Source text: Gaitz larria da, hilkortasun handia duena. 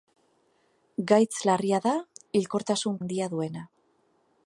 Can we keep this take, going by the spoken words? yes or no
yes